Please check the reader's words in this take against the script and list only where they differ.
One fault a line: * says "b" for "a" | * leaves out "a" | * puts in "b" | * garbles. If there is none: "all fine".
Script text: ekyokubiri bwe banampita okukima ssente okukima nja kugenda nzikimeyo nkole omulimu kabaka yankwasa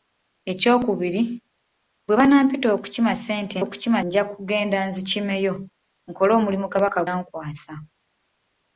all fine